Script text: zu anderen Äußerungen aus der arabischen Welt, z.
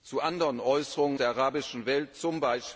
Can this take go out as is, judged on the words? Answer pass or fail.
fail